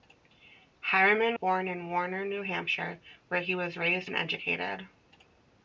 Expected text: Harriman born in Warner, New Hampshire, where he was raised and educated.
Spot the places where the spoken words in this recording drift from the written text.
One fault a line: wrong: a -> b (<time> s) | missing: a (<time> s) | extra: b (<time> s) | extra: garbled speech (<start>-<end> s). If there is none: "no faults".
no faults